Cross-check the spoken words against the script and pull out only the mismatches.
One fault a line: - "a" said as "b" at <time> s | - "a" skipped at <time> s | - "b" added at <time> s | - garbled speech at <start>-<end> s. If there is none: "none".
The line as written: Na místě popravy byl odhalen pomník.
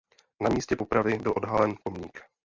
none